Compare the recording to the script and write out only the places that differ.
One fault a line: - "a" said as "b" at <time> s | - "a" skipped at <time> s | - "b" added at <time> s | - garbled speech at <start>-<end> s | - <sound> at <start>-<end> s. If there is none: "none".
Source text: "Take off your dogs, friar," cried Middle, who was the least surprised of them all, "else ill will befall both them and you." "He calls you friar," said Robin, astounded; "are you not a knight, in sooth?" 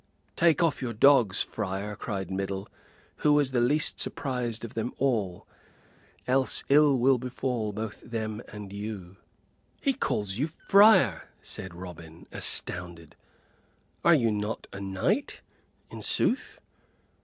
none